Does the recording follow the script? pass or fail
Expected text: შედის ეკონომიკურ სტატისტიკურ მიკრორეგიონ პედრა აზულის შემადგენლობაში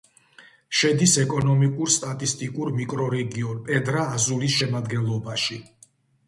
pass